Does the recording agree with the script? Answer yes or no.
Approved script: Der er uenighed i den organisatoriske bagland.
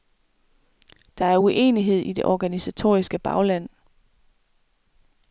no